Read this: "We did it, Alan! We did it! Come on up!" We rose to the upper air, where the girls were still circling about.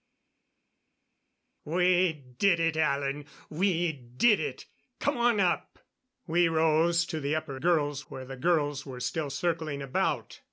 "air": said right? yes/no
no